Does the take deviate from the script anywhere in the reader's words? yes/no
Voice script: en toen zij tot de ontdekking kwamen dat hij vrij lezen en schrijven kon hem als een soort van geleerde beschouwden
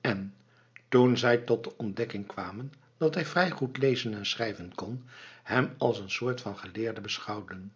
yes